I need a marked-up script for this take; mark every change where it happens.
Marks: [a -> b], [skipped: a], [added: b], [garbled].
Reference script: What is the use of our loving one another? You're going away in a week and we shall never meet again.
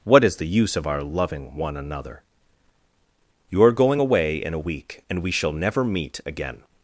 What is the use of our loving one another? You're going away in a week and we shall never meet again.